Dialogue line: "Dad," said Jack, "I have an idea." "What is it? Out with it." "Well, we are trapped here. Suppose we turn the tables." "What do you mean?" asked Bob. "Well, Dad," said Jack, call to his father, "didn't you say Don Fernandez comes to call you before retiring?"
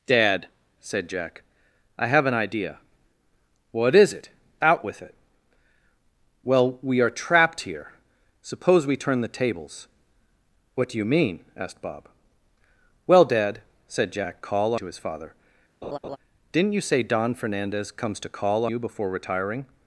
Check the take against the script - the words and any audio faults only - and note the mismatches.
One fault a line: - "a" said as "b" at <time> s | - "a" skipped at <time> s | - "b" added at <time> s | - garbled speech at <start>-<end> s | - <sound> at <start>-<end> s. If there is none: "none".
- laugh at 15.8-16.2 s